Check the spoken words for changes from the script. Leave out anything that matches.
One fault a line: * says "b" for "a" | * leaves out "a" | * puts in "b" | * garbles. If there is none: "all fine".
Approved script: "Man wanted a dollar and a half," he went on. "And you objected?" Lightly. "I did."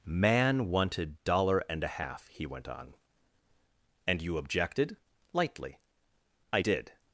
* leaves out "a"